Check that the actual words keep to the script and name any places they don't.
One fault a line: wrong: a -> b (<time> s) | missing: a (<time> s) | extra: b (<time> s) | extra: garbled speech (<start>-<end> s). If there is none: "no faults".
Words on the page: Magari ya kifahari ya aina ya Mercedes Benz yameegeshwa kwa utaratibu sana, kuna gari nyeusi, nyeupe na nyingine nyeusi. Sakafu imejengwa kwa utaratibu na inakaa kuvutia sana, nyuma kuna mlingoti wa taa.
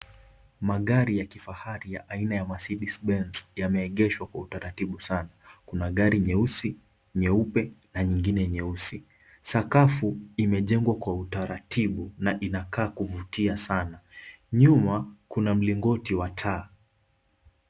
no faults